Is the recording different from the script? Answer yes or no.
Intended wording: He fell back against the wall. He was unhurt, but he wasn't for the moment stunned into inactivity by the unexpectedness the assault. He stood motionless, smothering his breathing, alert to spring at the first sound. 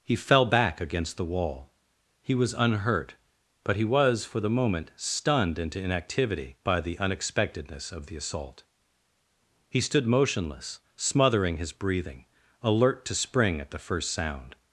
yes